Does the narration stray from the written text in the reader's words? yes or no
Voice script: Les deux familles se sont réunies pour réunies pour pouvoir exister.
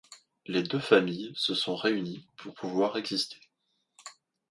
yes